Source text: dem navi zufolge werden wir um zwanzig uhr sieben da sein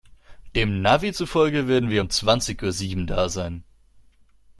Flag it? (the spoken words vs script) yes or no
no